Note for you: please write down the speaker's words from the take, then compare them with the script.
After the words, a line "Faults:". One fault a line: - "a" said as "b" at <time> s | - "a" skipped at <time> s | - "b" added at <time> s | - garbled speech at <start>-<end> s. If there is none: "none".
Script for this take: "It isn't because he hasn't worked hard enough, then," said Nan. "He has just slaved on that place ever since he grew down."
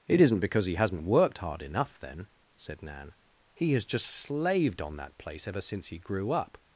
"It isn't because he hasn't worked hard enough, then," said Nan. "He has just slaved on that place ever since he grew up."
Faults:
- "down" said as "up" at 6.3 s